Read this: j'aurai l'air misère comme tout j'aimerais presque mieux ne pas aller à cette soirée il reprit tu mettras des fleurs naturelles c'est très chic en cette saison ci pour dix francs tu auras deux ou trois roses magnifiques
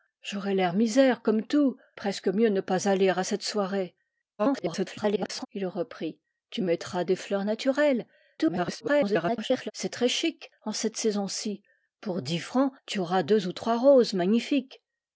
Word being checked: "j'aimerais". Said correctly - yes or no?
no